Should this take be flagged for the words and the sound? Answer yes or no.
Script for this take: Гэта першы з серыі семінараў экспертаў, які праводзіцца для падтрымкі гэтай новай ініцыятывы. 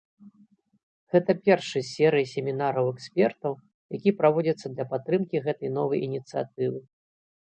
no